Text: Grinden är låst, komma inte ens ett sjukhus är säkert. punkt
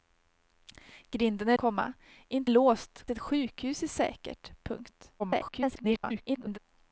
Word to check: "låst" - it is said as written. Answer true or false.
false